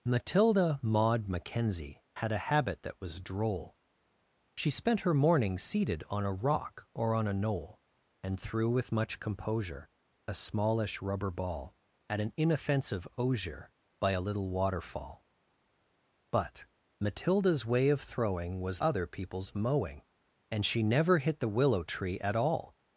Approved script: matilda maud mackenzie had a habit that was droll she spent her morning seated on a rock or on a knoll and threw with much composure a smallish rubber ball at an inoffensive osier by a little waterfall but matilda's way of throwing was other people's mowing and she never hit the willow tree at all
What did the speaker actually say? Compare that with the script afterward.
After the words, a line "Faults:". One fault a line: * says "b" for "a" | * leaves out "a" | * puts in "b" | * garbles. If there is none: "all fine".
matilda maud mackenzie had a habit that was droll she spent her morning seated on a rock or on a knoll and threw with much composure a smallish rubber ball at an inoffensive osier by a little waterfall but matilda's way of throwing was other people's mowing and she never hit the willow tree at all
Faults:
all fine